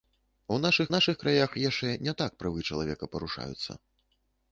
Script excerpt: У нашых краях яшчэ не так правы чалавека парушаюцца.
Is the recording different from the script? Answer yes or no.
yes